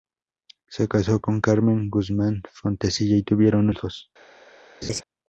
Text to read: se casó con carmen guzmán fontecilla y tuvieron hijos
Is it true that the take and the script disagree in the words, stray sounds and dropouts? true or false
true